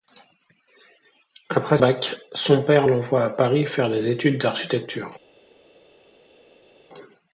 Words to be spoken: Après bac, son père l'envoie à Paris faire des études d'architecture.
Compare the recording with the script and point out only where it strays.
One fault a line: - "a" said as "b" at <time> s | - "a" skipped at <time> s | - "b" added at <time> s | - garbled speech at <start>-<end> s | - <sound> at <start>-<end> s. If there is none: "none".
none